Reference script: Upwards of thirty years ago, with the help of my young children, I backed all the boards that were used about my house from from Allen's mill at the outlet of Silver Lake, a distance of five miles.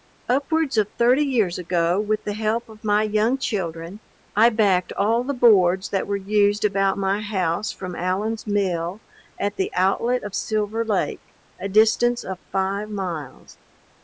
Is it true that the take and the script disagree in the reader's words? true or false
true